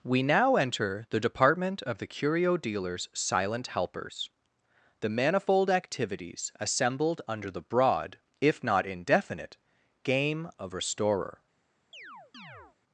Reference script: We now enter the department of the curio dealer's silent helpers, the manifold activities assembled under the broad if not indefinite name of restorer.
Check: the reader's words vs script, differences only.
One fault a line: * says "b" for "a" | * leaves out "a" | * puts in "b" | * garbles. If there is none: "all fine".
* says "game" for "name"